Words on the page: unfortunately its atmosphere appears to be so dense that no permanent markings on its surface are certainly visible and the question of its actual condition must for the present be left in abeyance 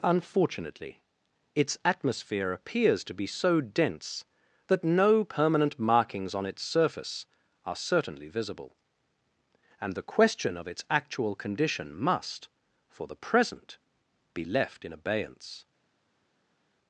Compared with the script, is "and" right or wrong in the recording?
right